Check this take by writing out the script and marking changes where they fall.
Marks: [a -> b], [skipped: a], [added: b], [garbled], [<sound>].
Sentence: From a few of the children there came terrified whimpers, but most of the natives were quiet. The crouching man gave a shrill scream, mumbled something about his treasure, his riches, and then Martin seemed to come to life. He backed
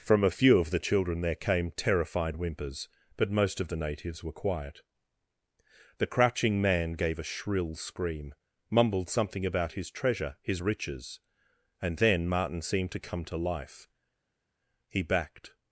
From a few of the children there came terrified whimpers, but most of the natives were quiet. The crouching man gave a shrill scream, mumbled something about his treasure, his riches, and then Martin seemed to come to life. He backed